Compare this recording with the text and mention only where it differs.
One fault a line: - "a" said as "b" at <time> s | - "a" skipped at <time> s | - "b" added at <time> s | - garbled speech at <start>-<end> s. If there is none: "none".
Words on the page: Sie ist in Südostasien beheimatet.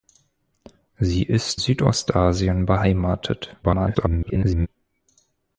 - "in" skipped at 1.6 s
- garbled speech at 3.6-4.7 s